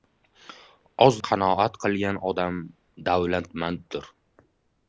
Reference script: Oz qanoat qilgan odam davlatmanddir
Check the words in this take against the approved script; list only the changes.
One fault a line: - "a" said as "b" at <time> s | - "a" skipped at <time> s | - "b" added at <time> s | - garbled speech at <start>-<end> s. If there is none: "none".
none